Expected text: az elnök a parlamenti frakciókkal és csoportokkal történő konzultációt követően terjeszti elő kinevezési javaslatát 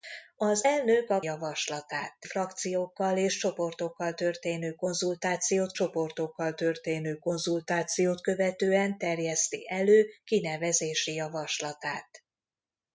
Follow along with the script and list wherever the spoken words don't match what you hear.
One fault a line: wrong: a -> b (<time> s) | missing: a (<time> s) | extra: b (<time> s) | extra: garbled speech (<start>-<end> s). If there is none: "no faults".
wrong: parlamenti -> javaslatát (1.2 s)
extra: csoportokkal történő konzultációt (5.7 s)